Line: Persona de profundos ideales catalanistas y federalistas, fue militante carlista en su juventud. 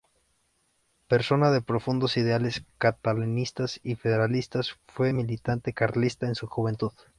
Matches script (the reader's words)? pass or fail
pass